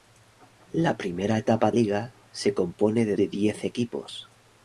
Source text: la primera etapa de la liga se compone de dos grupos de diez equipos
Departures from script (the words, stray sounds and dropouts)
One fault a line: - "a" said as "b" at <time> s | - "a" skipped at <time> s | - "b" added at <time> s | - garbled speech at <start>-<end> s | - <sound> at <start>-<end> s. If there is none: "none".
- "de la" skipped at 1.7 s
- "dos grupos" skipped at 3.2 s